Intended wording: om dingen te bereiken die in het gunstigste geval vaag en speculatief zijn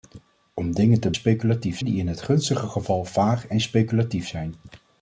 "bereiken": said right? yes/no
no